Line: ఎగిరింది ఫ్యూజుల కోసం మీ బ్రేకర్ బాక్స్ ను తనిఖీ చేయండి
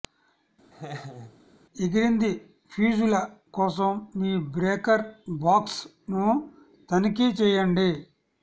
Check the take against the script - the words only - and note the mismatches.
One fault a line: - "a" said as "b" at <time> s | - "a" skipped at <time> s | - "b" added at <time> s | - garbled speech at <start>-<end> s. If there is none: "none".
none